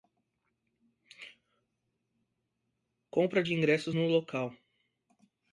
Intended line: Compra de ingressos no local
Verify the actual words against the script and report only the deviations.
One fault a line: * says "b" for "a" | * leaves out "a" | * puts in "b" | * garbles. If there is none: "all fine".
all fine